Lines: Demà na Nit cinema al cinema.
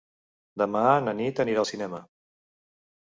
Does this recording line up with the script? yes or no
no